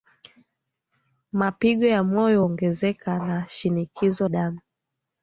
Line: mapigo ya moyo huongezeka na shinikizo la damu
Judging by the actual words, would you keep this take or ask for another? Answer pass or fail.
fail